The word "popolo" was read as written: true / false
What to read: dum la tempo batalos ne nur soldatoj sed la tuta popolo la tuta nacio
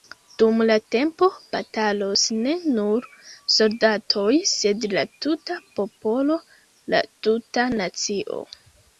true